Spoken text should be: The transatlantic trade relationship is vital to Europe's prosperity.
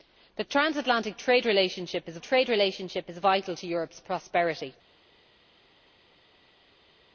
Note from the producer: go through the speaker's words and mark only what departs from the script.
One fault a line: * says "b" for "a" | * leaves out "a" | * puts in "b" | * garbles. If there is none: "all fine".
* puts in "trade relationship is"